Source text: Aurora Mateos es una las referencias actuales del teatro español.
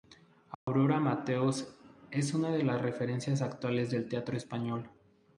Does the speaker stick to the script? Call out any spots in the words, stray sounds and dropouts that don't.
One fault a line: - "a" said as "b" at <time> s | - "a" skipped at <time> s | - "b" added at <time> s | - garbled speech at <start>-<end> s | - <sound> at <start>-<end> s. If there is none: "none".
- dropout at 0.5-0.7 s
- "de" added at 2.5 s